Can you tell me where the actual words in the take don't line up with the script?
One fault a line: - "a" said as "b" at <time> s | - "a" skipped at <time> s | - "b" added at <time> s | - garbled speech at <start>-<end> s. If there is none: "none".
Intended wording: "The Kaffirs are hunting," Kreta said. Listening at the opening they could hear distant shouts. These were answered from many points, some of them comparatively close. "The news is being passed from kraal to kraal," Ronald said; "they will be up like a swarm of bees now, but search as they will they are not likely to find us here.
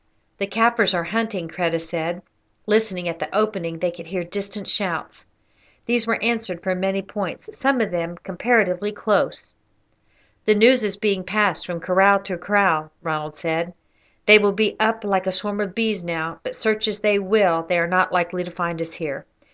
none